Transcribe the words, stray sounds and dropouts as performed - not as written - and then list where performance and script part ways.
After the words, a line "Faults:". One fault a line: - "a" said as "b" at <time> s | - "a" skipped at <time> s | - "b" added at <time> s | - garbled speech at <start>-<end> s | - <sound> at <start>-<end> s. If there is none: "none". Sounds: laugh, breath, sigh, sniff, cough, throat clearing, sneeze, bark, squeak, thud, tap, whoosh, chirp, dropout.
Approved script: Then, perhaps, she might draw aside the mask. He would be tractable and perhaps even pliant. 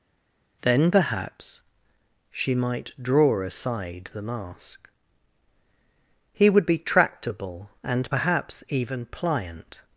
Then, perhaps, she might draw aside the mask. He would be tractable and perhaps even pliant.
Faults:
none